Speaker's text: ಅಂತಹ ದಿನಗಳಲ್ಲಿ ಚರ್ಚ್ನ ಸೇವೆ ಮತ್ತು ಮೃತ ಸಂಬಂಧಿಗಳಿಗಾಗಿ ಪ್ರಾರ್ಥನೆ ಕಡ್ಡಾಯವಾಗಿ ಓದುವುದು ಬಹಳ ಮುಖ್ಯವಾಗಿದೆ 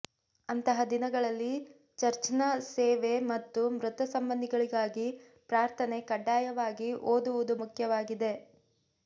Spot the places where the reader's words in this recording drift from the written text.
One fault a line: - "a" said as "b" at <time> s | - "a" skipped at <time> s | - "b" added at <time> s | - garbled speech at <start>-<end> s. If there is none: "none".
- "ಬಹಳ" skipped at 7.5 s